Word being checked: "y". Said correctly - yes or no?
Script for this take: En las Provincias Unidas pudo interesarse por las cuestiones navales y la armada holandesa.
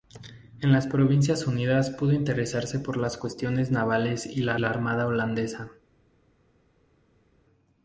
yes